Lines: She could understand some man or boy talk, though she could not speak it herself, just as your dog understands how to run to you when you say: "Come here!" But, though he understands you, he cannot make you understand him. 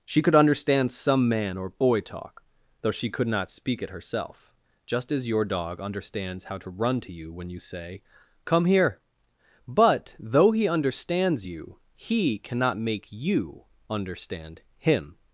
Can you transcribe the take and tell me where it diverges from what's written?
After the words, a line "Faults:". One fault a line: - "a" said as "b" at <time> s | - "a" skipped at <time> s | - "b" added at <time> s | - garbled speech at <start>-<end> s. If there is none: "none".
She could understand some man or boy talk, though she could not speak it herself, just as your dog understands how to run to you when you say: "Come here!" But, though he understands you, he cannot make you understand him.
Faults:
none